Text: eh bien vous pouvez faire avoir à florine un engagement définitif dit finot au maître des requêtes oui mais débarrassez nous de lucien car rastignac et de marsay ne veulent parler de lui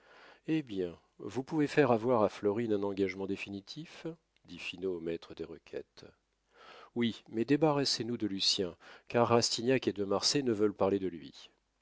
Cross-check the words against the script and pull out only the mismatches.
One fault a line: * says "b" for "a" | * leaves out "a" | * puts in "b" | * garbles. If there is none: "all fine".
all fine